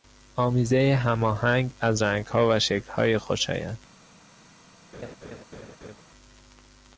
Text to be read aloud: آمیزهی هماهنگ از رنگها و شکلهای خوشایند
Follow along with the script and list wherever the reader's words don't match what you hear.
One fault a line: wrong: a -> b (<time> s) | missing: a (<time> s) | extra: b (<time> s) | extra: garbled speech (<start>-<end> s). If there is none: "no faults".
no faults